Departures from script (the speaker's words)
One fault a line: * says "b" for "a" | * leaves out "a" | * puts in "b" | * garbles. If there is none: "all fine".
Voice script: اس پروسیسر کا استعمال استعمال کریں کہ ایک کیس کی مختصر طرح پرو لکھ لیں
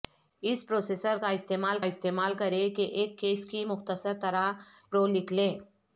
all fine